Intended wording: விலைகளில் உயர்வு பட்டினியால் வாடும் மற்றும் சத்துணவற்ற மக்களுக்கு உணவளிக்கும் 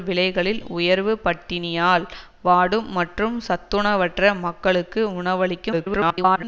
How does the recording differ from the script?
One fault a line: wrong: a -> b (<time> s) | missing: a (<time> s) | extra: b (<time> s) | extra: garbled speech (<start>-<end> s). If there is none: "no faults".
extra: garbled speech (5.7-6.4 s)